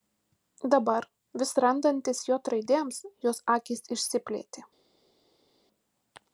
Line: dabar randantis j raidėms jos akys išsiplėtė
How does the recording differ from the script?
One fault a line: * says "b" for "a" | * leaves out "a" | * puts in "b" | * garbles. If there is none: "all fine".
* puts in "vis"